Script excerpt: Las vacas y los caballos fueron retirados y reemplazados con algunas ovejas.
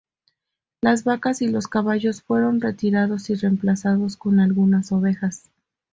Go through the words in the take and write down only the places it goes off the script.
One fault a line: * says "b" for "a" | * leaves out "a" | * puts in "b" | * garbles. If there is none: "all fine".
all fine